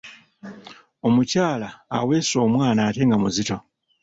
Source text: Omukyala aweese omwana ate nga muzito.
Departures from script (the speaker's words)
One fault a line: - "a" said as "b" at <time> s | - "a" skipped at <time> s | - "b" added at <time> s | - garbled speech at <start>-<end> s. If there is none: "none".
none